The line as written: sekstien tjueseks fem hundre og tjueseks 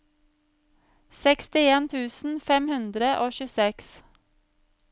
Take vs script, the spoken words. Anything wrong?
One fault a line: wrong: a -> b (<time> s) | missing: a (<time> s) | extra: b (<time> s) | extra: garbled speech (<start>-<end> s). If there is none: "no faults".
wrong: tjueseks -> tusen (1.9 s)